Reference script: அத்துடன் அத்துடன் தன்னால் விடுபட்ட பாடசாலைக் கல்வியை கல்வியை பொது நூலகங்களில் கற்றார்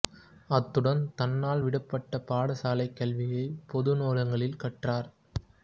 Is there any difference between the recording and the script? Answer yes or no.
yes